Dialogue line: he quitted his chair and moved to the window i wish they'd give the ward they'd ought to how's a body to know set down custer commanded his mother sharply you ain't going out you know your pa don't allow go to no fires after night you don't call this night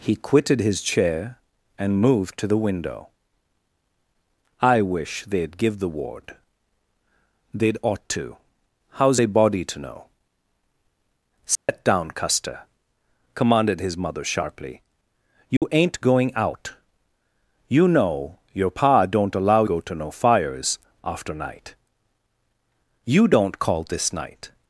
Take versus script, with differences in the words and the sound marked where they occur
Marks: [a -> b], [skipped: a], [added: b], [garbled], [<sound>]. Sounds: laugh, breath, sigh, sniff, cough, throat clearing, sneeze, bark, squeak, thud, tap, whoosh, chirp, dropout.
he quitted his chair and moved to the window i wish they'd give the ward they'd ought to how's a body to know set [dropout] down custer commanded his mother sharply you [dropout] ain't going out you know your pa don't allow go to no fires after night you don't call this night